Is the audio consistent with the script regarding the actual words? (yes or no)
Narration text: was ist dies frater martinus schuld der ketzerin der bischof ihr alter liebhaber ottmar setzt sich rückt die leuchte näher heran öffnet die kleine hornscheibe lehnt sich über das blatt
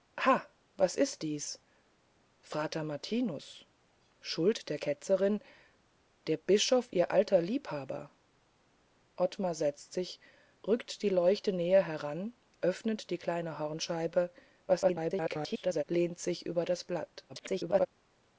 no